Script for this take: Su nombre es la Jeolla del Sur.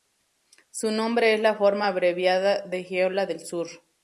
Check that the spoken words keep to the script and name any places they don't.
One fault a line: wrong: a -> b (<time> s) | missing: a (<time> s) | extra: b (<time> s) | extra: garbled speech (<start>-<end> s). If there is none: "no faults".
extra: forma abreviada de (1.5 s)